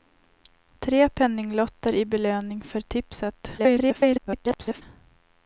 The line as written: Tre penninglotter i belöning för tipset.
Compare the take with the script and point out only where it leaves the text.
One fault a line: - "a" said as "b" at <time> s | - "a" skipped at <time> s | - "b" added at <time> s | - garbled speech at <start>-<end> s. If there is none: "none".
- garbled speech at 3.6-4.8 s